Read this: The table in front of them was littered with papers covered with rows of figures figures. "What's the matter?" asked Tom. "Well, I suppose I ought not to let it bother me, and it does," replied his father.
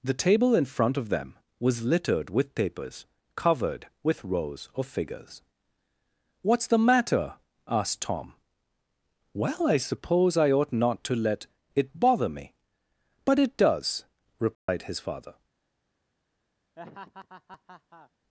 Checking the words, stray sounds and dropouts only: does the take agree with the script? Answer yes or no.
no